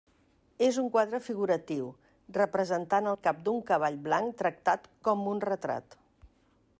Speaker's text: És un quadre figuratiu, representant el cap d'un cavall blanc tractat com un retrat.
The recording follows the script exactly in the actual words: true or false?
true